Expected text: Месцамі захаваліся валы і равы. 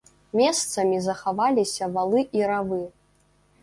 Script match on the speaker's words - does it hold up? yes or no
yes